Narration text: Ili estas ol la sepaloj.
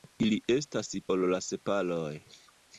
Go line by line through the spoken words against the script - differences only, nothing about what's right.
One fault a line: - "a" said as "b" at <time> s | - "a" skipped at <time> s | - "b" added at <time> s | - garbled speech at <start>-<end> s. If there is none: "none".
none